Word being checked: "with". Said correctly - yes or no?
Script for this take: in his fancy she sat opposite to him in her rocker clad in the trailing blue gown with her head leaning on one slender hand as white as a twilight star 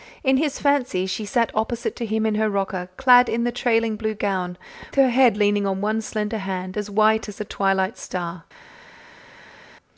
no